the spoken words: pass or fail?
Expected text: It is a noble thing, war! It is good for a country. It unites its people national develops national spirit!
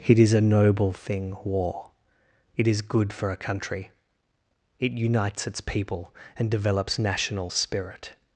fail